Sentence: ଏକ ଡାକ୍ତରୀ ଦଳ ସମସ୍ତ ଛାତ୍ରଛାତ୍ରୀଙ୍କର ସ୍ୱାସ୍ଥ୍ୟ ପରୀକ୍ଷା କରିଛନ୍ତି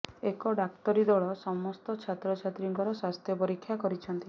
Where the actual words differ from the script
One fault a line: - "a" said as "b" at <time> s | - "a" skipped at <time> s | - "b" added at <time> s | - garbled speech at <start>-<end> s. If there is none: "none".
none